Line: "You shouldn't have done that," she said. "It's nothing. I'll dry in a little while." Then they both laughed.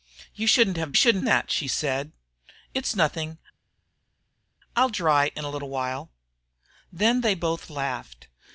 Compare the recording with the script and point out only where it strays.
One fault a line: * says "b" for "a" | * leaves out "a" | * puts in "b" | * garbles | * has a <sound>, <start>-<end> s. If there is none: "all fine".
* says "shouldn't" for "done"